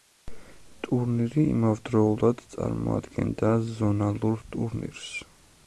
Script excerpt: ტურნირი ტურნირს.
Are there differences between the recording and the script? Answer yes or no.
yes